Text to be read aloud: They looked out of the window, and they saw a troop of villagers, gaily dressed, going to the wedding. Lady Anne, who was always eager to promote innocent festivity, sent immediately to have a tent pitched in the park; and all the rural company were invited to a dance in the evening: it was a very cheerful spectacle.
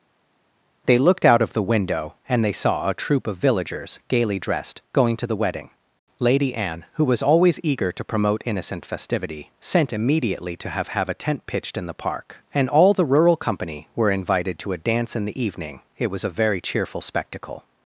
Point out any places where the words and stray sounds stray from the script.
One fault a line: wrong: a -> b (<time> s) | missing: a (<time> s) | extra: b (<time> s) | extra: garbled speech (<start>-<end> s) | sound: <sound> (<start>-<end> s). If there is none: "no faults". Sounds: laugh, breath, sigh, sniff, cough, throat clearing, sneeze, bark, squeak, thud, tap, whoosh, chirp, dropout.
extra: have (10.9 s)